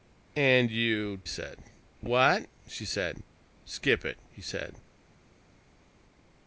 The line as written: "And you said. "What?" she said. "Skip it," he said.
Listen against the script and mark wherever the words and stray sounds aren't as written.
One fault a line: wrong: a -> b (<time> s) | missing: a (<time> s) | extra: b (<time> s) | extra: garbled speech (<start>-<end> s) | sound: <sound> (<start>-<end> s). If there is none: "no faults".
no faults